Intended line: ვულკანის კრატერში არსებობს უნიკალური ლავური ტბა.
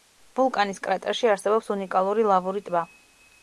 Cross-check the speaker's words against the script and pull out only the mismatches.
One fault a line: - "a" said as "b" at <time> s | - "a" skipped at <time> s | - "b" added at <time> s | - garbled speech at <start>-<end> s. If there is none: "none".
none